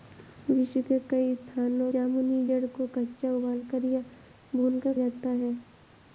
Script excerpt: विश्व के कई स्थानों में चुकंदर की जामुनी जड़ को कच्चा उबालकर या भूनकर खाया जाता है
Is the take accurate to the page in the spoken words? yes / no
no